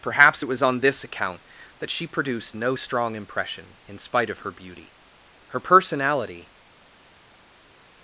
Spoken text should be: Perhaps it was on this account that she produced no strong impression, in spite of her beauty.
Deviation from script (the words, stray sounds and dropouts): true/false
true